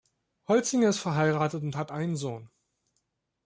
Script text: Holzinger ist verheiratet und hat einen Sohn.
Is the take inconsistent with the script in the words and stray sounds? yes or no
no